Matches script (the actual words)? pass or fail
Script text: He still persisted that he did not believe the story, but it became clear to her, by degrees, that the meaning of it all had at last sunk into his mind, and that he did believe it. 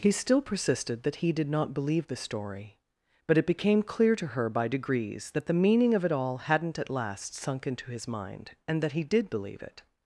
fail